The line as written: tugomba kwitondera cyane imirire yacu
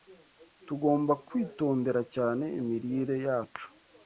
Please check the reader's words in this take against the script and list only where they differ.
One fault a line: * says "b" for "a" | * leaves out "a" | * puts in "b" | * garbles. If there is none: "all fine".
all fine